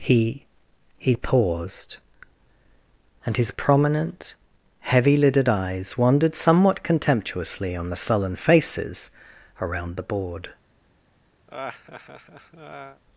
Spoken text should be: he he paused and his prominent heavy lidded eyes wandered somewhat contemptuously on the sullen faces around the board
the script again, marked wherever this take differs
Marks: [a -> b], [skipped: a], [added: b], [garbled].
he he paused and his prominent heavy lidded eyes wandered somewhat contemptuously on the sullen faces around the board